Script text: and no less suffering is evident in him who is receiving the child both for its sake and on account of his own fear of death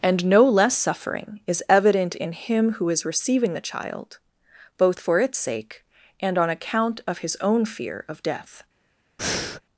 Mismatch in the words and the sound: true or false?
true